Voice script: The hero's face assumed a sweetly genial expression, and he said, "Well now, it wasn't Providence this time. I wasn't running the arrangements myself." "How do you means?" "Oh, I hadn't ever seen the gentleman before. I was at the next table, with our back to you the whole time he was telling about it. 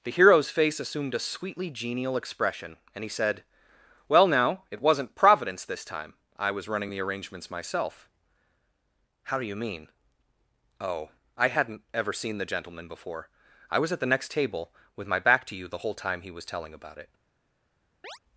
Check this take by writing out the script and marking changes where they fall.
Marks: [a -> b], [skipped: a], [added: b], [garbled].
The hero's face assumed a sweetly genial expression, and he said, "Well now, it wasn't Providence this time. I [wasn't -> was] running the arrangements myself." "How do you [means?" -> mean] "Oh, I hadn't ever seen the gentleman before. I was at the next table, with [our -> my] back to you the whole time he was telling about it.